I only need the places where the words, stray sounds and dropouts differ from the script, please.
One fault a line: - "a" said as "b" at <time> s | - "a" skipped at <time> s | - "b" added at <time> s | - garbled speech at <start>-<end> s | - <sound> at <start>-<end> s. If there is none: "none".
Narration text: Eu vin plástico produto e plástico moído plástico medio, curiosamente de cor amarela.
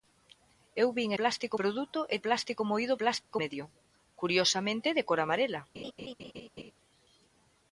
- dropout at 3.2-3.3 s
- laugh at 5.7-6.7 s